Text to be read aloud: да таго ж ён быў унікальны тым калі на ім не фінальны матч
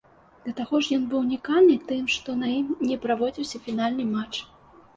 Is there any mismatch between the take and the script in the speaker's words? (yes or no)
yes